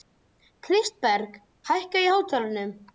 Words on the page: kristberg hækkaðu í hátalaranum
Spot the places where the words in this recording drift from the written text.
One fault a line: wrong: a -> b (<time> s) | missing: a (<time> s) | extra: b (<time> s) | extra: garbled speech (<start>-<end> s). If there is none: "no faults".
no faults